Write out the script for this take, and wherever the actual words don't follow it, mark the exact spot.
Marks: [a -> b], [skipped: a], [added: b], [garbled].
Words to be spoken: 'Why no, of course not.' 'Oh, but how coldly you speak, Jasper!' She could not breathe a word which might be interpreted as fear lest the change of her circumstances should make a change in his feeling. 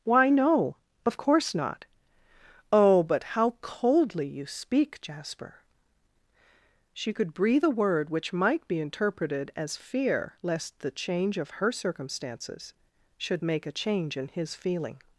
'Why no, of course not.' 'Oh, but how coldly you speak, Jasper!' She could [skipped: not] breathe a word which might be interpreted as fear lest the change of her circumstances should make a change in his feeling.